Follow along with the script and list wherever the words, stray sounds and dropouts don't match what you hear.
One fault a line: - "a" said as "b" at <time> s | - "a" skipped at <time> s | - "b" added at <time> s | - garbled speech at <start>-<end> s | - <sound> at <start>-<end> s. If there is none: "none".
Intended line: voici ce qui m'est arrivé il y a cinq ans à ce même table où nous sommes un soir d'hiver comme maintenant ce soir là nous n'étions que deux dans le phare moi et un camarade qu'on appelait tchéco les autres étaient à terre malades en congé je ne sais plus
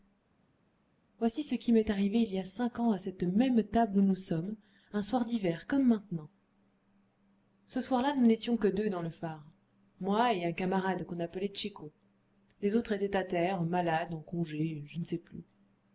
- "ce" said as "cette" at 3.0 s